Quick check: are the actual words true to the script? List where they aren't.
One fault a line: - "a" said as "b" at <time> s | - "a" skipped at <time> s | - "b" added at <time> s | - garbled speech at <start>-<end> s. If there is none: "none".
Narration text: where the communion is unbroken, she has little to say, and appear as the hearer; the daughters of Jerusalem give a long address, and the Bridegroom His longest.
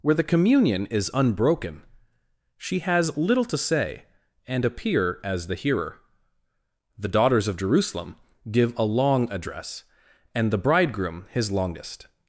none